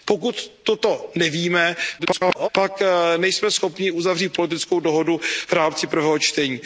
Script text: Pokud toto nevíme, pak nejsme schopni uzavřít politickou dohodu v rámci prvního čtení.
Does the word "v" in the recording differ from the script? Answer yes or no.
no